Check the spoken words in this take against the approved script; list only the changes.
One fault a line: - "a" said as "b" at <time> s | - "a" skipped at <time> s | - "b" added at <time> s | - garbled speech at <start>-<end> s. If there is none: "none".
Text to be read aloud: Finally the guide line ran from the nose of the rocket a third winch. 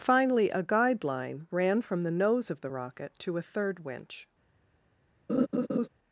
- "the" said as "a" at 0.5 s
- "to" added at 3.2 s